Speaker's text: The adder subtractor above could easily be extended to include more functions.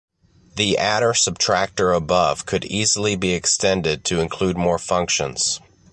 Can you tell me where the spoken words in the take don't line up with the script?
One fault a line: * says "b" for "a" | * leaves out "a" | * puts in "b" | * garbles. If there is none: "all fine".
all fine